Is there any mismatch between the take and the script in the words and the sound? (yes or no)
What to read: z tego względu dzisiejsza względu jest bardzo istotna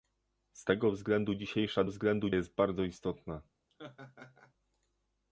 yes